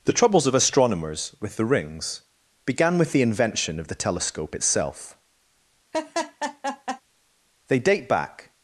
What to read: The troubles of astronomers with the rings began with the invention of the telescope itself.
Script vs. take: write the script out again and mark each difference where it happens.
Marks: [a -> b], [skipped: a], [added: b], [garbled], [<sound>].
The troubles of astronomers with the rings began with the invention of the telescope itself. [laugh] [added: They date back]